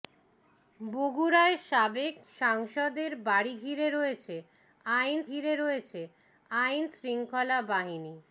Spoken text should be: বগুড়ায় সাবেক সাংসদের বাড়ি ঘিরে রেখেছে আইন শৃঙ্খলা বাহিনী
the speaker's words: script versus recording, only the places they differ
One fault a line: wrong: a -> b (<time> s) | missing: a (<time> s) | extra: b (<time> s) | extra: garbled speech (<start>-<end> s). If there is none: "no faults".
extra: ঘিরে রেখেছে আইন (5.3 s)